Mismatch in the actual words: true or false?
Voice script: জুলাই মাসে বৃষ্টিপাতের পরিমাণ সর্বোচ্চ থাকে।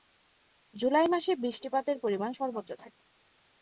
false